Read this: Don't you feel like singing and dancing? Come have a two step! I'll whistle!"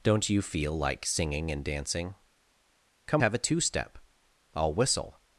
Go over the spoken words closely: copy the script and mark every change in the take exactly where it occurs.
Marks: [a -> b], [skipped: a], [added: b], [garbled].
Don't you feel like singing and dancing? Come have a two step! I'll whistle!"